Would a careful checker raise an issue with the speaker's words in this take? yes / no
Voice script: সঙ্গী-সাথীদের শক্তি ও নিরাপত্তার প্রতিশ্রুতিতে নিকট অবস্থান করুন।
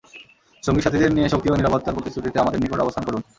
yes